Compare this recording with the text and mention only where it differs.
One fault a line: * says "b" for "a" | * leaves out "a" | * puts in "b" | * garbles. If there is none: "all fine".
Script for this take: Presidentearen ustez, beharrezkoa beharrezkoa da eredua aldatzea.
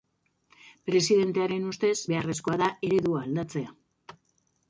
* leaves out "beharrezkoa"